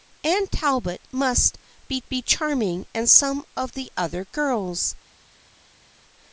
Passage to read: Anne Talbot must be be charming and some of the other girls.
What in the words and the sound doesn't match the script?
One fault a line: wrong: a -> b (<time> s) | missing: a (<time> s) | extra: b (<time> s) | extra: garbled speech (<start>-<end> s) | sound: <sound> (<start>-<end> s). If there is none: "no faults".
no faults